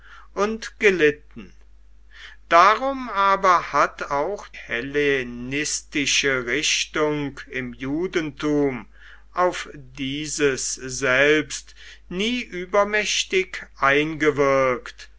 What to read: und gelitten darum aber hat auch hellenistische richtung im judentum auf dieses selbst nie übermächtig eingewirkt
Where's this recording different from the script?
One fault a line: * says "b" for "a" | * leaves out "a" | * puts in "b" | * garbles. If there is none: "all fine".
all fine